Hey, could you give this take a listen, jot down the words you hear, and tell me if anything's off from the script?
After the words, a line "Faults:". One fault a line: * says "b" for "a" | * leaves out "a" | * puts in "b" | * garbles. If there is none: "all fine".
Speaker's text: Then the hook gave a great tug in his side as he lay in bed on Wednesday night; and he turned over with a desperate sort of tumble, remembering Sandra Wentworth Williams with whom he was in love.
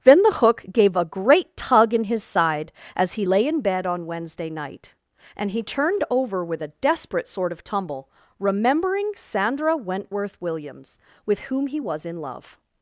Then the hook gave a great tug in his side as he lay in bed on Wednesday night; and he turned over with a desperate sort of tumble, remembering Sandra Wentworth Williams with whom he was in love.
Faults:
all fine